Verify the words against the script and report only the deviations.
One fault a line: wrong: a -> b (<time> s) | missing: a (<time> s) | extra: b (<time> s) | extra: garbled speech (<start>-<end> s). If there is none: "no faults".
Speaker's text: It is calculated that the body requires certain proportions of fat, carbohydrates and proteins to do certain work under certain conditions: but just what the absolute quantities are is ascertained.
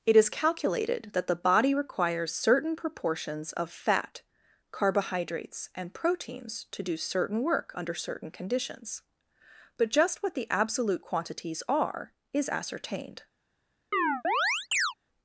no faults